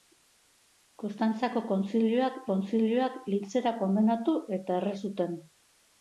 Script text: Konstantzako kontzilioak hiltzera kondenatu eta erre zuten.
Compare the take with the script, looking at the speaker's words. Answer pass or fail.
fail